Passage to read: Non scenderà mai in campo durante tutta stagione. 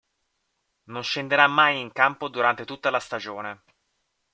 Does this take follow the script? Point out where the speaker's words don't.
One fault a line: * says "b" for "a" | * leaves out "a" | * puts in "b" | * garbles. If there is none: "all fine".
* puts in "la"